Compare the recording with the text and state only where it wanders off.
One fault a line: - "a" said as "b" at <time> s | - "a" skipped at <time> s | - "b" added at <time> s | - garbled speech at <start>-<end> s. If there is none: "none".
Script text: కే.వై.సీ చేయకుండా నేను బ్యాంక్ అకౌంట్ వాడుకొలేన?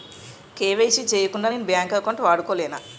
none